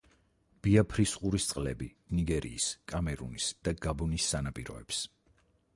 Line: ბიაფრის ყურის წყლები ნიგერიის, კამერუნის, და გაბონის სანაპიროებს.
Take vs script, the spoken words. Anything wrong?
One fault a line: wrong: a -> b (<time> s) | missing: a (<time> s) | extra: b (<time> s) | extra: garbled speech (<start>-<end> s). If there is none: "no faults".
no faults